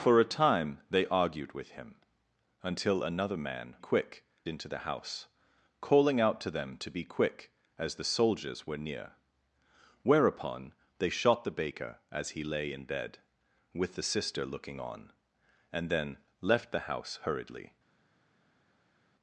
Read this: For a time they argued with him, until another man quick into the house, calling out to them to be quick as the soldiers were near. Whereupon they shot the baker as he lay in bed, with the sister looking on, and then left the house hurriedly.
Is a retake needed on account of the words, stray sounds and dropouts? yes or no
no